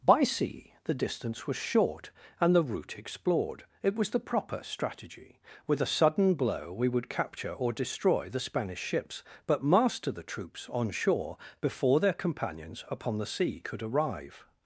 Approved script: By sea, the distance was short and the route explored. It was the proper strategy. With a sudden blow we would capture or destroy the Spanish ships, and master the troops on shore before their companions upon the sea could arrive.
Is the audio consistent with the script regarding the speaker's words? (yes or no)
no